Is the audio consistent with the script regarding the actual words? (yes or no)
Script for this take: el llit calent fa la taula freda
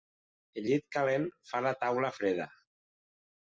yes